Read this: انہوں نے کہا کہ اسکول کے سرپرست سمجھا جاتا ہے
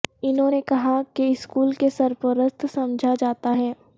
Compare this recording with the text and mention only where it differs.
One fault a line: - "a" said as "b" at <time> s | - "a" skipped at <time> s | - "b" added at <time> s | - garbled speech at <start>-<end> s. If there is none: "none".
none